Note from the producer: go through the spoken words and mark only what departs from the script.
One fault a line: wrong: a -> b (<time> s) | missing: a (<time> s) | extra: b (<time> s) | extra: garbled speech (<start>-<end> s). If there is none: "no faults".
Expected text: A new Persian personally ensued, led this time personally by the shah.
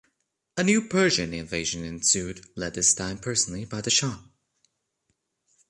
wrong: personally -> invasion (1.3 s)